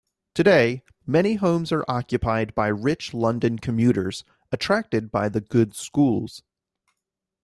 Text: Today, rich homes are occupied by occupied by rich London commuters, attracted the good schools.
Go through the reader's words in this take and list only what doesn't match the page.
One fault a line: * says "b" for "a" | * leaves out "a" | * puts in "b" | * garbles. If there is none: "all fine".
* says "many" for "rich"
* leaves out "occupied by"
* puts in "by"